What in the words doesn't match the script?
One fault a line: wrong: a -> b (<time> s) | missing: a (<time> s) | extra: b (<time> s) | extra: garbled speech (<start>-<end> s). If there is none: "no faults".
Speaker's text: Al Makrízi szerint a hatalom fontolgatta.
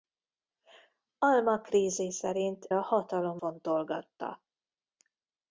no faults